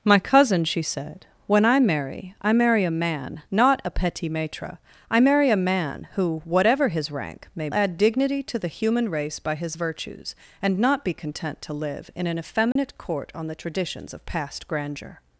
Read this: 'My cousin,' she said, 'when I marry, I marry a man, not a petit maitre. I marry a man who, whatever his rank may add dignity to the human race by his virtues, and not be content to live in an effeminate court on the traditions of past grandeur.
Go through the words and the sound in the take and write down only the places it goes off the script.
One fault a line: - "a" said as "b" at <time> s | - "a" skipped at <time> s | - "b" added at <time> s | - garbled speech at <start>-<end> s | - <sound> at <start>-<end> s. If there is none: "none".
- dropout at 12.7-12.8 s